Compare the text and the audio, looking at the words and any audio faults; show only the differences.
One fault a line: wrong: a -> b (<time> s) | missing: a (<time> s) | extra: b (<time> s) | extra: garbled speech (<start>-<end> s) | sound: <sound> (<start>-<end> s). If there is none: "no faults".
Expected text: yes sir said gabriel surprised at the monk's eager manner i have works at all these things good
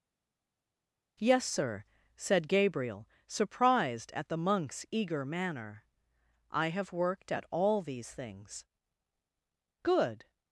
wrong: works -> worked (6.9 s)